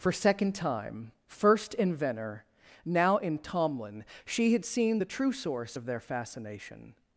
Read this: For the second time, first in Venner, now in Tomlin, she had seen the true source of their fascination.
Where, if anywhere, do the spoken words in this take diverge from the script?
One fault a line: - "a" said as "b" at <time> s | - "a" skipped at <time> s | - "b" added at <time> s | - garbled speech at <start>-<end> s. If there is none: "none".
- "the" skipped at 0.1 s